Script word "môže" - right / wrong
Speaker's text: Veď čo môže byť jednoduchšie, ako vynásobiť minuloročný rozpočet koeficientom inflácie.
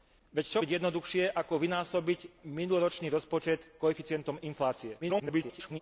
wrong